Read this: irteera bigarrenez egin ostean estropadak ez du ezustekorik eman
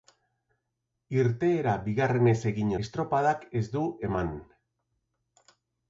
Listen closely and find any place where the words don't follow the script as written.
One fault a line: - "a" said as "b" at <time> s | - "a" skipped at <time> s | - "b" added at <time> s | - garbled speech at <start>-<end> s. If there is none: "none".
- "ostean" skipped at 2.7 s
- "ezustekorik" skipped at 3.9 s